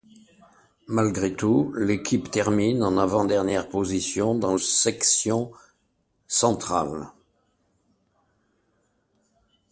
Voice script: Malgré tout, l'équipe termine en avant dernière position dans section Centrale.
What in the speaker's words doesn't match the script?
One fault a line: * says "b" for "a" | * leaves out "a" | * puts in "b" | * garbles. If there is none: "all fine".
all fine